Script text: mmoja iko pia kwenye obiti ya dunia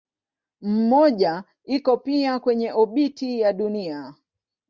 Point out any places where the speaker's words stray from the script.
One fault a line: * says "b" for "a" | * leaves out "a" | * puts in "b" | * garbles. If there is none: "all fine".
all fine